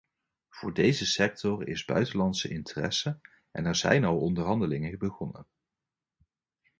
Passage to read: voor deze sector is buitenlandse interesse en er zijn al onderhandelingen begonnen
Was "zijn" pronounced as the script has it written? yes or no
yes